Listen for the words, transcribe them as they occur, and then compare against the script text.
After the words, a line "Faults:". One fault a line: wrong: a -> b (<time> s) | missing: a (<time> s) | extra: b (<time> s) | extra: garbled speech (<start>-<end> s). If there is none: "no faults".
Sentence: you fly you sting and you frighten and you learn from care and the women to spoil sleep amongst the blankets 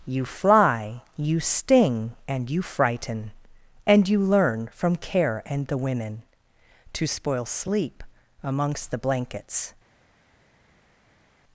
you fly you sting and you frighten and you learn from care and the women to spoil sleep amongst the blankets
Faults:
no faults